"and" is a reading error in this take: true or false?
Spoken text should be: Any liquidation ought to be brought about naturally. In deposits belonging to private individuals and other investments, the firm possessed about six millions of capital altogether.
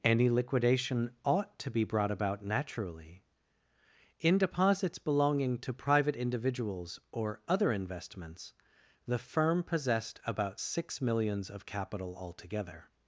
true